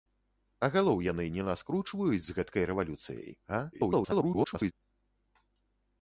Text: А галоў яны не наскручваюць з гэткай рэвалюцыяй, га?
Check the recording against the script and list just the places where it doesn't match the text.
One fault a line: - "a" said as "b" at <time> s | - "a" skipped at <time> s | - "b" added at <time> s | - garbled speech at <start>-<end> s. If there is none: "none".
- garbled speech at 3.7-4.7 s